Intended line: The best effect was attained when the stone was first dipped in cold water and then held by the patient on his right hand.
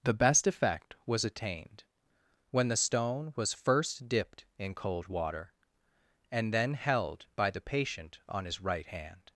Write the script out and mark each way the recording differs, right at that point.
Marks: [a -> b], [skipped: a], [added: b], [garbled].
The best effect was attained when the stone was first dipped in cold water and then held by the patient on his right hand.